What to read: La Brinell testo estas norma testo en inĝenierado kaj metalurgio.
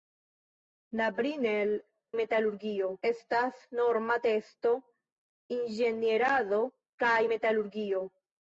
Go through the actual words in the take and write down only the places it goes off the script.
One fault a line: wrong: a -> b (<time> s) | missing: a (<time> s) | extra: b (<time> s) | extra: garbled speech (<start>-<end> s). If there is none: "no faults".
wrong: testo -> metalurgio (2.2 s)
missing: en (4.7 s)